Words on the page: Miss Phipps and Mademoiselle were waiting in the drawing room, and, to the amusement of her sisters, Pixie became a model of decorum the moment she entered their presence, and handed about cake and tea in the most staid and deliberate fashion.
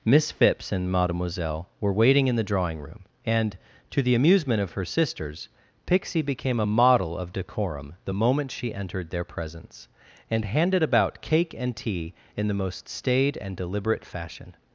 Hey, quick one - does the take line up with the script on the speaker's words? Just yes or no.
yes